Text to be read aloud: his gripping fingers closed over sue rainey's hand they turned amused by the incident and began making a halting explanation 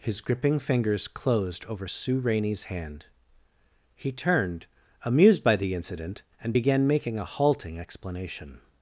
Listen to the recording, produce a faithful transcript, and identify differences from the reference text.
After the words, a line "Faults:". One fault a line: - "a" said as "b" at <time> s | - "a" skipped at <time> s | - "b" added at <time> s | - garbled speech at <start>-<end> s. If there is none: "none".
his gripping fingers closed over sue rainey's hand he turned amused by the incident and began making a halting explanation
Faults:
- "they" said as "he" at 3.9 s